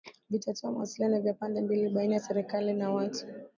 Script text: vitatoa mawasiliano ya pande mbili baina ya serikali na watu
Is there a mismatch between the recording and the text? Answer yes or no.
no